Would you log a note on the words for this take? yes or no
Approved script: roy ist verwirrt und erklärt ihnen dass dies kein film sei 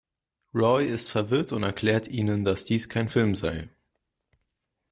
no